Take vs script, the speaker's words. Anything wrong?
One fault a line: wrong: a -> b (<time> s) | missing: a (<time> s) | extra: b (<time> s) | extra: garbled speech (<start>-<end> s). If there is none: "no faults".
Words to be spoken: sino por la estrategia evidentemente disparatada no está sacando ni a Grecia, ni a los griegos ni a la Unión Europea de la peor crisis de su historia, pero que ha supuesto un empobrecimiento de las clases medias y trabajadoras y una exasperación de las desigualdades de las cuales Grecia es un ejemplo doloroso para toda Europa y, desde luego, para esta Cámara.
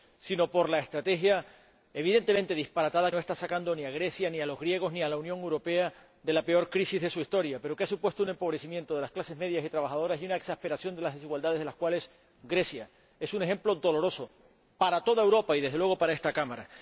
no faults